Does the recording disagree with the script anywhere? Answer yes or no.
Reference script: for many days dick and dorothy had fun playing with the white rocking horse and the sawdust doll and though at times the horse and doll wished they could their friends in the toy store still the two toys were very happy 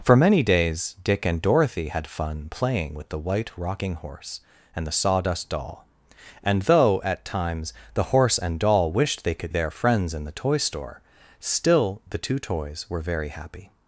no